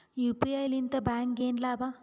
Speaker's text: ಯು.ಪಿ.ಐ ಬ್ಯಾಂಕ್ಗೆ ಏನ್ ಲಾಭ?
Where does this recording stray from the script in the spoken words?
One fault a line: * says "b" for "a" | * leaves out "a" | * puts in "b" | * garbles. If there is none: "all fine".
* puts in "ಲಿಂದ"